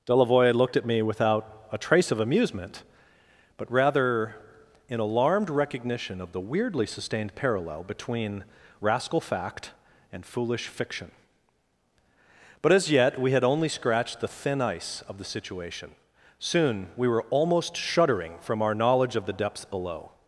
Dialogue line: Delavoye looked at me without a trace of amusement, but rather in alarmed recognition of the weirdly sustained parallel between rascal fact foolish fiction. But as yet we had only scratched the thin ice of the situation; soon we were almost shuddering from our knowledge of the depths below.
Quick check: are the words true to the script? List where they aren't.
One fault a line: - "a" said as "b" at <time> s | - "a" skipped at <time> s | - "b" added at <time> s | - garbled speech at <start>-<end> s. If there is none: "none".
- "and" added at 10.1 s